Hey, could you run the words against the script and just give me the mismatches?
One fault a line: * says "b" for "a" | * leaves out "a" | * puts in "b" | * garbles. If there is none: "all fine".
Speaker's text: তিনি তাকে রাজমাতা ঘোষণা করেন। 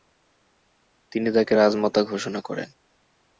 all fine